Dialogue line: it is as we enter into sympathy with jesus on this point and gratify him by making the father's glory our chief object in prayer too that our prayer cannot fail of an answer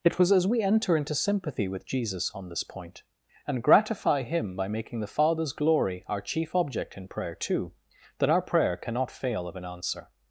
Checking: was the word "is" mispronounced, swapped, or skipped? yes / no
yes